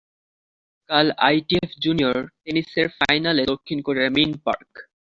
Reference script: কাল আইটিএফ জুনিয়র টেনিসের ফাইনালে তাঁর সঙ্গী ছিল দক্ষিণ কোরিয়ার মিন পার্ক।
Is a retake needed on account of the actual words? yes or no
yes